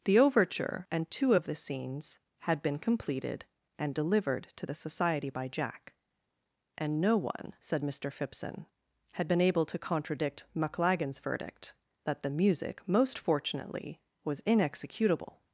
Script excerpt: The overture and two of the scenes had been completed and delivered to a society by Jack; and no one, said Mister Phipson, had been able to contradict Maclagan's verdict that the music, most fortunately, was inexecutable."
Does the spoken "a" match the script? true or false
false